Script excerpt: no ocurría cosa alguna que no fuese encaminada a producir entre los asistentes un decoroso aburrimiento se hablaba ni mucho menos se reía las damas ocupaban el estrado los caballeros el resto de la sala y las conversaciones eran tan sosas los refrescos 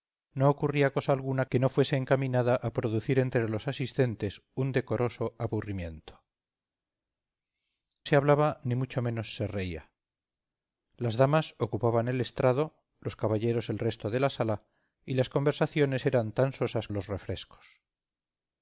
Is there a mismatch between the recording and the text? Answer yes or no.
no